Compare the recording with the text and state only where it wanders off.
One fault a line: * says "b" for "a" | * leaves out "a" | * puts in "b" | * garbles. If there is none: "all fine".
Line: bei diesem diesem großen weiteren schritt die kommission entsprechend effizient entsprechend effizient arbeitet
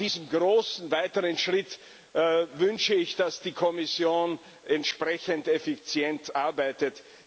* leaves out "diesem"
* puts in "wünsche ich dass"
* leaves out "entsprechend effizient"